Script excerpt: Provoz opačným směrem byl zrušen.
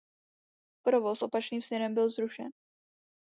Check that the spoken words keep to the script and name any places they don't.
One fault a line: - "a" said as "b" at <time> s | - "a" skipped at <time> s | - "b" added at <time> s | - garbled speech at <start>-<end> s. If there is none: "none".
none